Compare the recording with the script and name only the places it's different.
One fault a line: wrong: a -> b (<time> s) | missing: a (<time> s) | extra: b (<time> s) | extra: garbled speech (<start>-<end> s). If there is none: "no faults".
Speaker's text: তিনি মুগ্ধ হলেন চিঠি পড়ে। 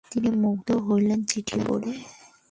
no faults